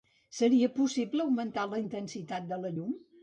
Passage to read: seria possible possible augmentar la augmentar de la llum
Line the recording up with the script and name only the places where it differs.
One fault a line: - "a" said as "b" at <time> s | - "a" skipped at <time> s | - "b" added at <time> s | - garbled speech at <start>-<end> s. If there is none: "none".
- "possible" skipped at 1.2 s
- "augmentar" said as "intensitat" at 1.8 s